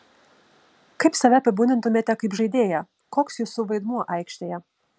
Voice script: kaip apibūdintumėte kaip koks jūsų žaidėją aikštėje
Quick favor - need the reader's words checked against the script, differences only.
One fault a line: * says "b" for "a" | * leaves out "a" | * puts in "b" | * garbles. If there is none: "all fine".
* puts in "save"
* puts in "žaidėją"
* says "vaidmuo" for "žaidėją"